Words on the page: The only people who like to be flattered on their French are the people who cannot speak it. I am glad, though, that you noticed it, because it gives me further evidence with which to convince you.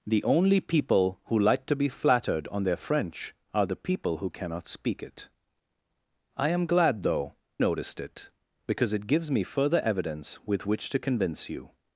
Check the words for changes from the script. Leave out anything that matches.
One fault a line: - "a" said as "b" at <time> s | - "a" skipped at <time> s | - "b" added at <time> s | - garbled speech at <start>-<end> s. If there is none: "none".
- "that you" skipped at 7.3 s